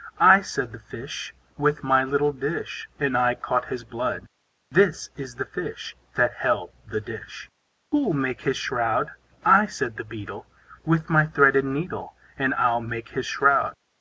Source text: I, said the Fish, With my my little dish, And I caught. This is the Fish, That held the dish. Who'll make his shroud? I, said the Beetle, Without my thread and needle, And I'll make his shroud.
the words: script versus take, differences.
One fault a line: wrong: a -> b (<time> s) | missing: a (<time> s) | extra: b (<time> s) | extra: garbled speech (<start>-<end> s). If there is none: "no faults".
missing: my (2.0 s)
extra: his blood (3.6 s)
wrong: Without -> With (10.9 s)